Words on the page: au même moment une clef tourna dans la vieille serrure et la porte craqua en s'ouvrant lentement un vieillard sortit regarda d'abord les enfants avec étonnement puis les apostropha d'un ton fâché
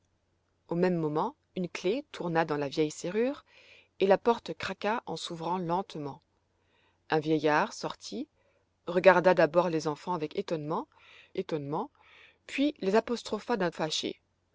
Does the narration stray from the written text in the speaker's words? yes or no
yes